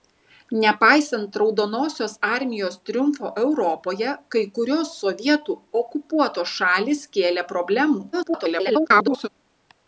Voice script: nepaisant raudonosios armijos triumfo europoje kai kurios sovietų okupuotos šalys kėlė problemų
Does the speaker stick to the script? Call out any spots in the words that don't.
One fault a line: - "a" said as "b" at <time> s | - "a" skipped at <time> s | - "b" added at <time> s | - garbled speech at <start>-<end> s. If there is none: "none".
- garbled speech at 8.1-9.3 s